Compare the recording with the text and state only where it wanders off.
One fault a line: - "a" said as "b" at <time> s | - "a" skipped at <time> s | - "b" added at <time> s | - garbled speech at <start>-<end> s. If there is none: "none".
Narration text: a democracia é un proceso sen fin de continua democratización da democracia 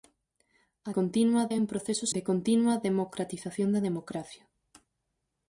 - "democracia" said as "continua" at 1.0 s
- "sen fin" skipped at 2.0 s